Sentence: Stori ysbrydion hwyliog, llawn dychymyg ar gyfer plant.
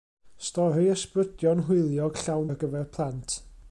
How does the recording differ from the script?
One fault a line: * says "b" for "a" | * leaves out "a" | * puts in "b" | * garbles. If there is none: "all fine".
* leaves out "dychymyg"